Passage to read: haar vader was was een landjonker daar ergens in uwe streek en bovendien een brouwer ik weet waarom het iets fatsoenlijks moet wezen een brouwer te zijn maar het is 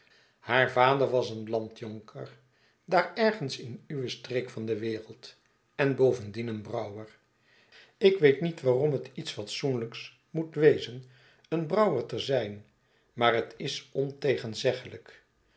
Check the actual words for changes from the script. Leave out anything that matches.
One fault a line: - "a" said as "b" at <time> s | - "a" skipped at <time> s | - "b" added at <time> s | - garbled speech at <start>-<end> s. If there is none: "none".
- "was" skipped at 1.3 s
- "van de wereld" added at 4.5 s
- "niet" added at 8.4 s